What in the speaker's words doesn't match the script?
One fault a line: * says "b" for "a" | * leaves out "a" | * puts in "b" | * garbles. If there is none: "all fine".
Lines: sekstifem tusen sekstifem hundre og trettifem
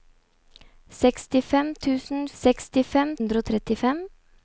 all fine